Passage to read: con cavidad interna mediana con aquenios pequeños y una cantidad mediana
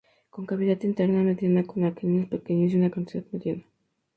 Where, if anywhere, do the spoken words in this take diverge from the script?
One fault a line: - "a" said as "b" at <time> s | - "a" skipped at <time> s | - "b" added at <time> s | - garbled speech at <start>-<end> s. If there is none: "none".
none